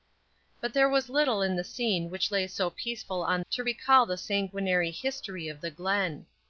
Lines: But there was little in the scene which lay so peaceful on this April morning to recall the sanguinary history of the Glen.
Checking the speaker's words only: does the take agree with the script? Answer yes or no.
no